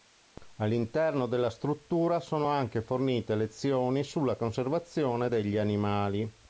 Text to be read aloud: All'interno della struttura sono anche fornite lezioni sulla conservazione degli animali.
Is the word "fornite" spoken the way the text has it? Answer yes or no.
yes